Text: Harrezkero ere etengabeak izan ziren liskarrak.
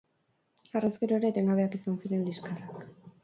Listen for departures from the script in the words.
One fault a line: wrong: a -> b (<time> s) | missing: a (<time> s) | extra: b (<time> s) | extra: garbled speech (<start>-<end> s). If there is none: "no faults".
no faults